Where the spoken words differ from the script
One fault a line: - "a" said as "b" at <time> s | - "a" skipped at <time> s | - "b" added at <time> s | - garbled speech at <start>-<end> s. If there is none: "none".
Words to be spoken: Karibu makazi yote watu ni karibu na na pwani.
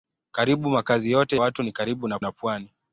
none